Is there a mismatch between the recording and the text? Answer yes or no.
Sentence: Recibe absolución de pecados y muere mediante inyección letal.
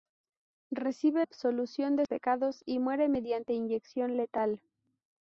no